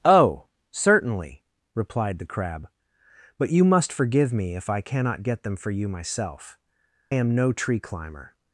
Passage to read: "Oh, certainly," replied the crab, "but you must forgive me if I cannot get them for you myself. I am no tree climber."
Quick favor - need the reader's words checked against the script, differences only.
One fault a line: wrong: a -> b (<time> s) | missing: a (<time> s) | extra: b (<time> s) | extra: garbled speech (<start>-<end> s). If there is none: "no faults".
missing: I (6.6 s)